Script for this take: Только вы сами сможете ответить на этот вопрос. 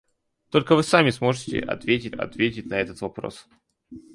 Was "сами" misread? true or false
false